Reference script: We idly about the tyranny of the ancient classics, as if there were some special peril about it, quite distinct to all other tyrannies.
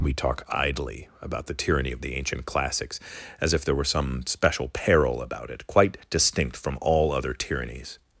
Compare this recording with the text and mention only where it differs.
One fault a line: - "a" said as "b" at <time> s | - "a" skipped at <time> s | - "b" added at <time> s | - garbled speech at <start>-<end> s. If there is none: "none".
- "talk" added at 0.1 s
- "to" said as "from" at 6.6 s